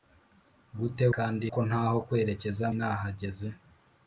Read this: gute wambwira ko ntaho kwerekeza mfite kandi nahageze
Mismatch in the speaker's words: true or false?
true